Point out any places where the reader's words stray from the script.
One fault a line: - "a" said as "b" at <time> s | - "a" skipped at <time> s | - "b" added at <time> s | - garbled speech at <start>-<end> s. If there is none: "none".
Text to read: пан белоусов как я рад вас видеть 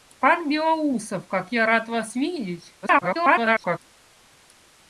- garbled speech at 2.8-3.8 s